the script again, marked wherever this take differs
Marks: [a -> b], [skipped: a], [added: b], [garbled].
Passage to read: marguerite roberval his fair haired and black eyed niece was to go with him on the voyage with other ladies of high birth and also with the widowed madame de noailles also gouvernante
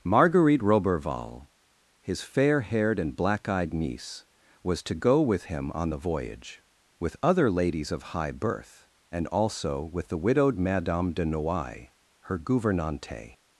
marguerite roberval his fair haired and black eyed niece was to go with him on the voyage with other ladies of high birth and also with the widowed madame de noailles [also -> her] gouvernante